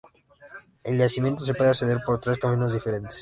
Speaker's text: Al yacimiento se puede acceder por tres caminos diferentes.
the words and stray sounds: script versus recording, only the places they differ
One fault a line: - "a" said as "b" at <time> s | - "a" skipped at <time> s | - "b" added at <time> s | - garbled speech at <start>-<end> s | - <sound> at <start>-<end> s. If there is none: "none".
none